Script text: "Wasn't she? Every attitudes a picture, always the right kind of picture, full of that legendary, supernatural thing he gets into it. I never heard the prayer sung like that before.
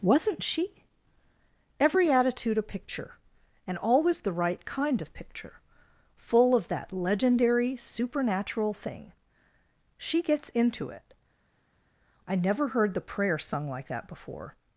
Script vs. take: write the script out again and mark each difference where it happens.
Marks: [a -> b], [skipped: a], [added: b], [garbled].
"Wasn't she? Every [attitudes -> attitude] a picture, [added: and] always the right kind of picture, full of that legendary, supernatural thing [he -> she] gets into it. I never heard the prayer sung like that before.